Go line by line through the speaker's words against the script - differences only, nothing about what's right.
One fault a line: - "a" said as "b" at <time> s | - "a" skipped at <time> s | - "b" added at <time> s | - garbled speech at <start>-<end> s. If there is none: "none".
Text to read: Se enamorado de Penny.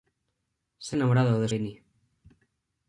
none